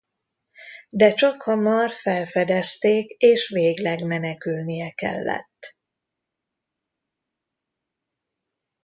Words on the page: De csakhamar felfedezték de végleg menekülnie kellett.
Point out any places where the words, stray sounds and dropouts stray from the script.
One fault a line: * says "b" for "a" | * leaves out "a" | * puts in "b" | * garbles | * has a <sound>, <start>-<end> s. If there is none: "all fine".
* says "és" for "de"